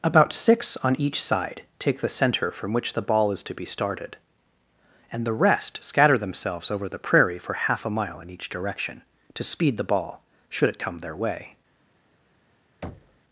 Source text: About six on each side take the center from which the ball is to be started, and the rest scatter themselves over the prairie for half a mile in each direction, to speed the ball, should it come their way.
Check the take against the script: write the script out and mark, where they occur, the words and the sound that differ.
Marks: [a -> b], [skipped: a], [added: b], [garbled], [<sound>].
About six on each side take the center from which the ball is to be started, and the rest scatter themselves over the prairie for half a mile in each direction, to speed the ball, should it come their way. [thud]